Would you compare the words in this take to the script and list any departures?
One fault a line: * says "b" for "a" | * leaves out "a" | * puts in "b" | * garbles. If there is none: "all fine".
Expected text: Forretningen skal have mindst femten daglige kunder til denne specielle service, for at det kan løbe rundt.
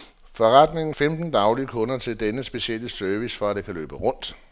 * leaves out "skal have mindst"